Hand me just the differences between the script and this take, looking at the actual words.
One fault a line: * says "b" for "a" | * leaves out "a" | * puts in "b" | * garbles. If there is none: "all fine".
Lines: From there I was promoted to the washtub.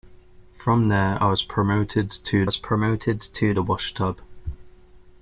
* puts in "was promoted to"